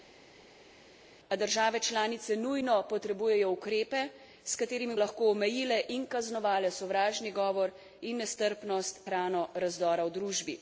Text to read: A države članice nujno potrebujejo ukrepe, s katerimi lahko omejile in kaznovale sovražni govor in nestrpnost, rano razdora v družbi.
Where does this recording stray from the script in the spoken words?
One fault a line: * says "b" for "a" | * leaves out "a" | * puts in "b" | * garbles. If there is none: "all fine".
all fine